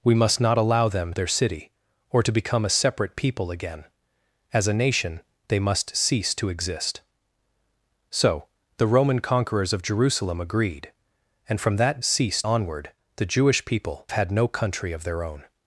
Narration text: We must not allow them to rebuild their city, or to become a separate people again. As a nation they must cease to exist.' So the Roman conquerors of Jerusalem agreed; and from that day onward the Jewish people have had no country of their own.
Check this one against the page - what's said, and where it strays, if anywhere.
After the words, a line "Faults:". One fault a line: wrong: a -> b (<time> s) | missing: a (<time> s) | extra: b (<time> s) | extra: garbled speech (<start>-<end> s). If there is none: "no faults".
We must not allow them their city, or to become a separate people again. As a nation they must cease to exist.' So the Roman conquerors of Jerusalem agreed; and from that cease onward the Jewish people had no country of their own.
Faults:
missing: to rebuild (1.1 s)
wrong: day -> cease (12.0 s)
missing: have (14.1 s)